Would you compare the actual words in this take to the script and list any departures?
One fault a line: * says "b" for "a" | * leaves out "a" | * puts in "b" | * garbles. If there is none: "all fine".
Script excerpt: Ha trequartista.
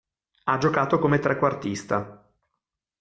* puts in "giocato come"